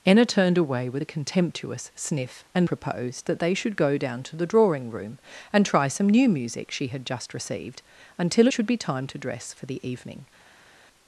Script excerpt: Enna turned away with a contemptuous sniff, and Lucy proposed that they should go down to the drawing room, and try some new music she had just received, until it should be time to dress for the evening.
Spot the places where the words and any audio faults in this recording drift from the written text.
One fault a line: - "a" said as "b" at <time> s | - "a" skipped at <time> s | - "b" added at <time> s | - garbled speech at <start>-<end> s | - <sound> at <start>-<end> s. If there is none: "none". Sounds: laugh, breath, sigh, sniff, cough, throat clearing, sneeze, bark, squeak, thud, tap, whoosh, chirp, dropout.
- "Lucy" skipped at 2.7 s
- "it" skipped at 8.5 s